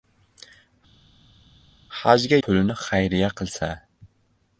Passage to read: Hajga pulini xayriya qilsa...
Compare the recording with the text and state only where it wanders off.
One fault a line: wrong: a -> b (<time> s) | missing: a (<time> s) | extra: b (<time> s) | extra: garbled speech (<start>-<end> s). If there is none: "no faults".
no faults